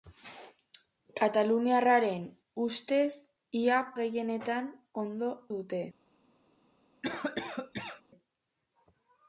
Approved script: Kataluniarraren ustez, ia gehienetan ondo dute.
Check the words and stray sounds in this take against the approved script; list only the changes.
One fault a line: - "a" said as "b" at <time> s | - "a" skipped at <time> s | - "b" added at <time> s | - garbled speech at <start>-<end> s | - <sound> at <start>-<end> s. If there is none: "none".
- cough at 7.0-8.0 s